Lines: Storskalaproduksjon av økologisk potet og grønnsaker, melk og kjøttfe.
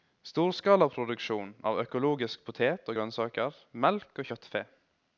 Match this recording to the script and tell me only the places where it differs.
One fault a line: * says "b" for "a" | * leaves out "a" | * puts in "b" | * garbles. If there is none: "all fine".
all fine